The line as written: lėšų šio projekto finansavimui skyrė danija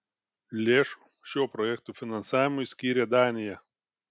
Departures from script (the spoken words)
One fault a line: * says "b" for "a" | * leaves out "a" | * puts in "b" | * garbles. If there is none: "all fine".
all fine